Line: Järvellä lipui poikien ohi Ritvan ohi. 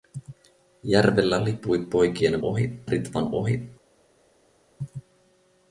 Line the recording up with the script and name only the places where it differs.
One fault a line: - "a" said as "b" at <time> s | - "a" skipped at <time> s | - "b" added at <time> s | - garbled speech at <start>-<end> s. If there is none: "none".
none